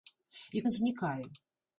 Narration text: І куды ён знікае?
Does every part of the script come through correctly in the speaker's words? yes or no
no